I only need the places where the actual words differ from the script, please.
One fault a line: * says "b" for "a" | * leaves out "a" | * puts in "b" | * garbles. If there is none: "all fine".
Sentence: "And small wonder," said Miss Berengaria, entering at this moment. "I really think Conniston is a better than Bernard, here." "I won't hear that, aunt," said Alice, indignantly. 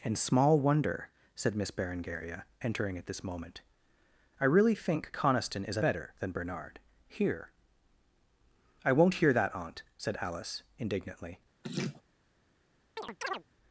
all fine